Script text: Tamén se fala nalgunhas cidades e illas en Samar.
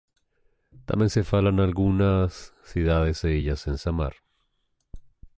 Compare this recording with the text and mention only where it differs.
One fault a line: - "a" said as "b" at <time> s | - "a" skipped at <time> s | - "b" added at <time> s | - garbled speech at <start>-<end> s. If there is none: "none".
none